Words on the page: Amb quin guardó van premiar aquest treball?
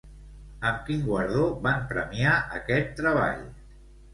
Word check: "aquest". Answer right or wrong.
right